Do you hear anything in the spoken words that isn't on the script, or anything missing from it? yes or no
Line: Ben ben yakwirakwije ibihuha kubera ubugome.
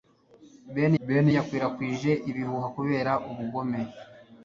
no